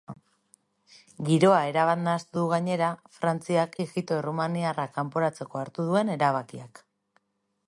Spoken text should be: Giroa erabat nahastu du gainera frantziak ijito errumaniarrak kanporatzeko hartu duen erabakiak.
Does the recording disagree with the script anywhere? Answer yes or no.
no